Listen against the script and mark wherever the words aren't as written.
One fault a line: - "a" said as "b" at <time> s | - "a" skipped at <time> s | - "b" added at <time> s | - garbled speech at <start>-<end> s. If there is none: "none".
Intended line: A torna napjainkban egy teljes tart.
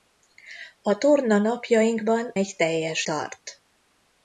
none